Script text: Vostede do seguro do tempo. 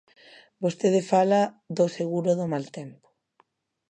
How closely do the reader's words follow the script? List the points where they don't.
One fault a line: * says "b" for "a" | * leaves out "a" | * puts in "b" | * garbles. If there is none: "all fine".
* puts in "fala"
* puts in "mal"